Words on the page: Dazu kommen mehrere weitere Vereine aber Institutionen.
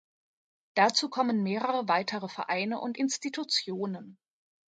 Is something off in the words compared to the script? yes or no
yes